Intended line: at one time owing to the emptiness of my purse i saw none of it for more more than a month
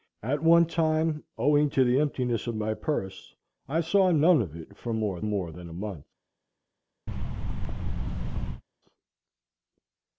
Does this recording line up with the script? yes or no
yes